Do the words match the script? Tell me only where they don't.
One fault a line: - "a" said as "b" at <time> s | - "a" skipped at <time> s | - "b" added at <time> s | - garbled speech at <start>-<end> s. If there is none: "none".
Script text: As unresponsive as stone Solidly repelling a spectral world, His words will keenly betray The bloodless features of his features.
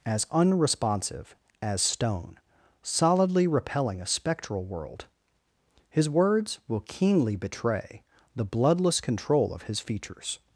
- "features" said as "control" at 9.0 s